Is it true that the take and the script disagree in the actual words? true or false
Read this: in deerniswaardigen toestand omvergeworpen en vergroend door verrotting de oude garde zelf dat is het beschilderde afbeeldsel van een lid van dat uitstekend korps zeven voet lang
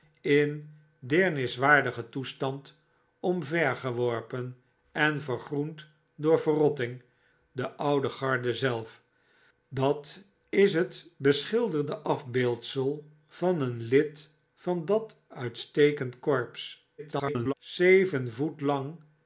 true